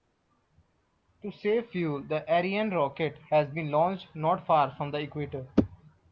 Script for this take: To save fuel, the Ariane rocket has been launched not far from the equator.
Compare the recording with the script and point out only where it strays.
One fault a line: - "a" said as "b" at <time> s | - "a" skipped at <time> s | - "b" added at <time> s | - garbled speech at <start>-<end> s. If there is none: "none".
none